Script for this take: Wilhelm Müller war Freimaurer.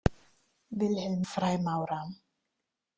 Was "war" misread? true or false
true